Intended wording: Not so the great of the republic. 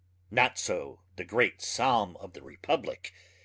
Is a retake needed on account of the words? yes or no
yes